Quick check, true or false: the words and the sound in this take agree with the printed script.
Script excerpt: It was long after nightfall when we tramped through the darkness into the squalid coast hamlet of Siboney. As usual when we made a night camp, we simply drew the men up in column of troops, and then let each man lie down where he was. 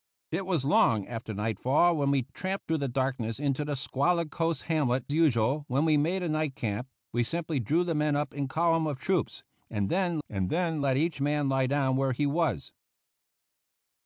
false